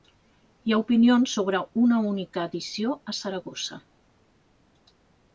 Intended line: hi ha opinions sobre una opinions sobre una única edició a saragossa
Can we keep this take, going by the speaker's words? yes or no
no